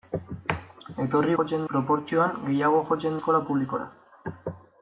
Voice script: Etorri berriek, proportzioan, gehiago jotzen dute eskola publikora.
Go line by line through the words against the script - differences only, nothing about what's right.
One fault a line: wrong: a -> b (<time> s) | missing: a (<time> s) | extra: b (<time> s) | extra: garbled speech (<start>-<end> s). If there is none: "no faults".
wrong: berriek -> jotzen (1.4 s)
missing: dute (3.2 s)